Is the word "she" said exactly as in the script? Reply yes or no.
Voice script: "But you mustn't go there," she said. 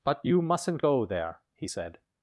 no